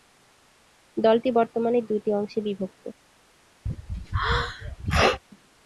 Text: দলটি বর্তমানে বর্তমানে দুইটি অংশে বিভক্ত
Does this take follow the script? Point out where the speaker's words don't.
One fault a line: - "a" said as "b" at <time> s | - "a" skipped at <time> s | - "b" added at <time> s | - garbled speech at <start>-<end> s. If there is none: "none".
- "বর্তমানে" skipped at 1.8 s